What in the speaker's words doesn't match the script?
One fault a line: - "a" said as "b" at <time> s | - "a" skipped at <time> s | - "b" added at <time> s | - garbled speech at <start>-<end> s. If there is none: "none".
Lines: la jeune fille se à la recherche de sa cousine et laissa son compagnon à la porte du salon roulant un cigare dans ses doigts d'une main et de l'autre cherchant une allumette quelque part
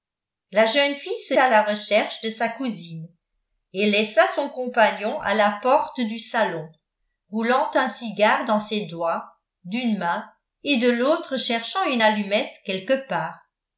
none